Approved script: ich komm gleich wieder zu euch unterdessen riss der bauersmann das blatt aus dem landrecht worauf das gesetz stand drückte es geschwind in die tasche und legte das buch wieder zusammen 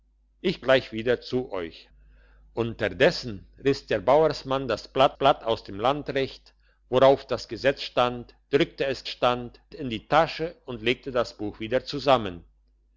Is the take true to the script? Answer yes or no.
no